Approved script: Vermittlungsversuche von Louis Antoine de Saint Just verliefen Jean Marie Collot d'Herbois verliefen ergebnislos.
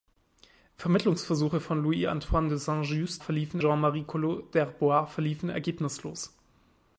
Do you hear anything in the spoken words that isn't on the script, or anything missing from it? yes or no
no